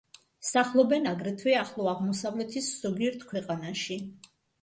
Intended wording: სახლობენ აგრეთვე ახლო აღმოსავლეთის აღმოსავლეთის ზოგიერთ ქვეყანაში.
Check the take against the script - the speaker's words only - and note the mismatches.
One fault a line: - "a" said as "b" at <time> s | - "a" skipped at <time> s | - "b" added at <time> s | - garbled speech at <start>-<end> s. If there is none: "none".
- "აღმოსავლეთის" skipped at 2.7 s